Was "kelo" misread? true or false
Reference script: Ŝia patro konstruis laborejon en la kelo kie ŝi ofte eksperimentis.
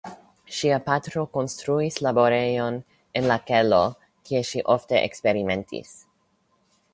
false